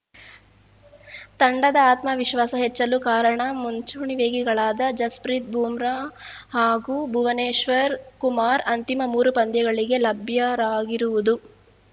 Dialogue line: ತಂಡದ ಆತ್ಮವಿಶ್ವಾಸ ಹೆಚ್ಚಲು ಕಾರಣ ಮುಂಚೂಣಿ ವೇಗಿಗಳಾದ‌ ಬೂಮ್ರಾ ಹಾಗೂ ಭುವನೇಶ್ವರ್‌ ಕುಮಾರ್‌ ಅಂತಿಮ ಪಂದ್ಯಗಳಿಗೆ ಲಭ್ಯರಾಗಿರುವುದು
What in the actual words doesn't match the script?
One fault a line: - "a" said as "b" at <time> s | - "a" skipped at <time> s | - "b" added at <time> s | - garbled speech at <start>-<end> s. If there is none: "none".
- "ಜಸ್‌ಪ್ರೀತ್" added at 5.0 s
- "ಮೂರು" added at 9.1 s